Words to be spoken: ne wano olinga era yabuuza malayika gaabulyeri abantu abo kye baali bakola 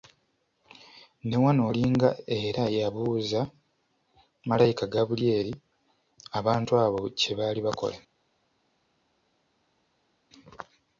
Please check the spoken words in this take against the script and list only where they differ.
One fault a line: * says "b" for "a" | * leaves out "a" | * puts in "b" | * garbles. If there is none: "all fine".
all fine